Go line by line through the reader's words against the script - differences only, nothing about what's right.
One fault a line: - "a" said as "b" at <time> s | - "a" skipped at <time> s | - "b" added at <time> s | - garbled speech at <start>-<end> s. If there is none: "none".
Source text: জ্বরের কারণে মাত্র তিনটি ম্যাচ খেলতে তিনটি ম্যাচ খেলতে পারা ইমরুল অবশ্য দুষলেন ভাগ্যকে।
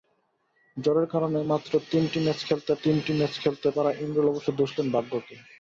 none